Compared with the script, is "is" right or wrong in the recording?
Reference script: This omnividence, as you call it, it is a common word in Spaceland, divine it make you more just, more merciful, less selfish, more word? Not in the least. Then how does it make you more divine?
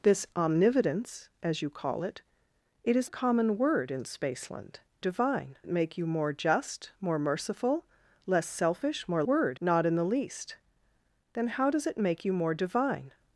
right